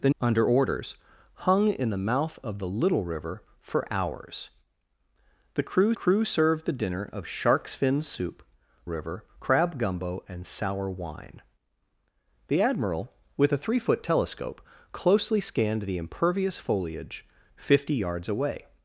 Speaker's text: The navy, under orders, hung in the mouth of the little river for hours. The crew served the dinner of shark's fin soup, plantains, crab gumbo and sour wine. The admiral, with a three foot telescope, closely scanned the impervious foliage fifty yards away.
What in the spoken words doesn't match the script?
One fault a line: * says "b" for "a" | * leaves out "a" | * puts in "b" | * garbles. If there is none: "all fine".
* leaves out "navy"
* puts in "crew"
* says "river" for "plantains"